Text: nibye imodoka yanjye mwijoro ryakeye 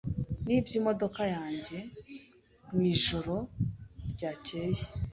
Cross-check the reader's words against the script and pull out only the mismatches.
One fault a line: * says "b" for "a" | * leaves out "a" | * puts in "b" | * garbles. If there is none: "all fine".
all fine